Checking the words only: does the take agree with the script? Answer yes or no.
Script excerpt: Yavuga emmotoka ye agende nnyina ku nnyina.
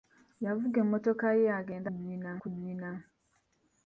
yes